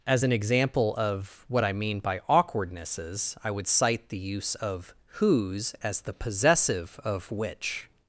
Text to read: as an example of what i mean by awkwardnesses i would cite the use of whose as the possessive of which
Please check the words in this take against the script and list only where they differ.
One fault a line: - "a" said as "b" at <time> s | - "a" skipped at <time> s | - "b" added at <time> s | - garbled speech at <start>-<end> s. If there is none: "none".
none